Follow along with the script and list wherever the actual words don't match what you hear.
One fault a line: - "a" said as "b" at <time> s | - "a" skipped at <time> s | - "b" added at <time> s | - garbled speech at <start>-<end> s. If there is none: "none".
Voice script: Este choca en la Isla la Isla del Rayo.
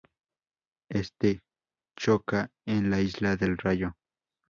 - "la Isla" skipped at 3.4 s